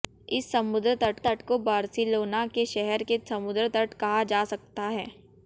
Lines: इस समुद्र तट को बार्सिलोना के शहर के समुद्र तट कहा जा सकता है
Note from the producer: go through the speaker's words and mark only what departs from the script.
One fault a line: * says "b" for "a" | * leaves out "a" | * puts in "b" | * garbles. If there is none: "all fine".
* puts in "तट"